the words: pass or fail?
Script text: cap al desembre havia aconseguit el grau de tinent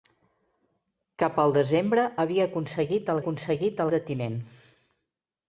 fail